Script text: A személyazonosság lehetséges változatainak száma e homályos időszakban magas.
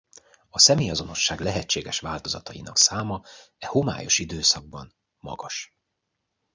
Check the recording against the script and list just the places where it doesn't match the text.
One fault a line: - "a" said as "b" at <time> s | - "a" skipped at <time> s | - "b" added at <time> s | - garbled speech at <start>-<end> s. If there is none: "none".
none